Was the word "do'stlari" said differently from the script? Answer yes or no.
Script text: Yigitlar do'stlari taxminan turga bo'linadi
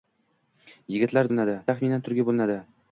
yes